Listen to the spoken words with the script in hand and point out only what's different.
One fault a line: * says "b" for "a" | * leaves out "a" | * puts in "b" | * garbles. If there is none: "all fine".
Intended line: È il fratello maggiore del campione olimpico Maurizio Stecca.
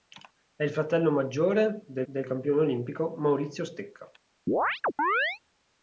* puts in "del"